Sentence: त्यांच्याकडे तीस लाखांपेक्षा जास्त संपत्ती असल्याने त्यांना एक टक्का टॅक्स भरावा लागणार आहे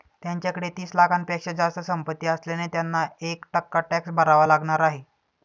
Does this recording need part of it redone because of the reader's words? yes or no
no